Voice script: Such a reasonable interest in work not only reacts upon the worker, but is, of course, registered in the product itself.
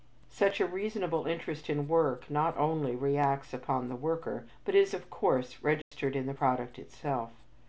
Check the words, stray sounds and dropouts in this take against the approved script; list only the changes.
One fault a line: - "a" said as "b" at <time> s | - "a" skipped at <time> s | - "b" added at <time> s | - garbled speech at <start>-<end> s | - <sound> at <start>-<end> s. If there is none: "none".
- dropout at 5.8-5.9 s